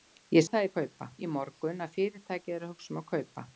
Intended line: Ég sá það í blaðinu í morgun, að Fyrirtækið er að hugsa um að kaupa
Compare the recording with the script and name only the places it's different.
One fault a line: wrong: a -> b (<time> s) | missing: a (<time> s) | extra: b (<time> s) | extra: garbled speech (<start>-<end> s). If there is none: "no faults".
missing: sá (0.5 s)
wrong: blaðinu -> kaupa (0.8 s)